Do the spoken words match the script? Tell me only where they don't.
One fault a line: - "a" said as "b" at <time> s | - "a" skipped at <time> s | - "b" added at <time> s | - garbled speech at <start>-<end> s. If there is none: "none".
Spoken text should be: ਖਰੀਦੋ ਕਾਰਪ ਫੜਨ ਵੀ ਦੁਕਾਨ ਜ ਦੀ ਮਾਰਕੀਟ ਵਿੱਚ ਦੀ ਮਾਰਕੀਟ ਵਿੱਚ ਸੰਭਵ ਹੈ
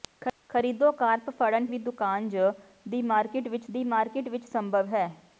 none